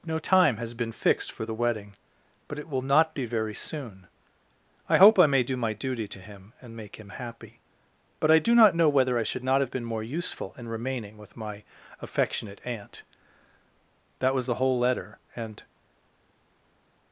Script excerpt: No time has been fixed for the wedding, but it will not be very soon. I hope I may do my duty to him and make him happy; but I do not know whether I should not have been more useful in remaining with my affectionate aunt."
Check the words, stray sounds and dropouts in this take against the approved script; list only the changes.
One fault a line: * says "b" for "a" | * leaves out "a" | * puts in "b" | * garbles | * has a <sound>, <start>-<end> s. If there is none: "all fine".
* puts in "That was the whole letter and"